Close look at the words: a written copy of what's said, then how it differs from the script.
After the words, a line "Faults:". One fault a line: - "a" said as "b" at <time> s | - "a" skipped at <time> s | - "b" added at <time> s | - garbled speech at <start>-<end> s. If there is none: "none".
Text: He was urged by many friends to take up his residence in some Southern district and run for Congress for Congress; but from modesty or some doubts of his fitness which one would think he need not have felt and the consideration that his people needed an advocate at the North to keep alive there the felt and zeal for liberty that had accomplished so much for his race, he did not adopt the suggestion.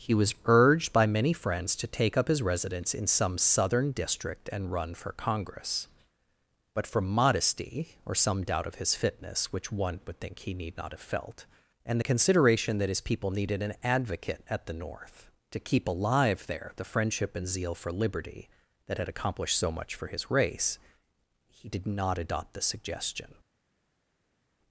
He was urged by many friends to take up his residence in some Southern district and run for Congress; but from modesty or some doubt of his fitness which one would think he need not have felt and the consideration that his people needed an advocate at the North to keep alive there the friendship and zeal for liberty that had accomplished so much for his race, he did not adopt the suggestion.
Faults:
- "for Congress" skipped at 5.9 s
- "doubts" said as "doubt" at 8.4 s
- "felt" said as "friendship" at 16.8 s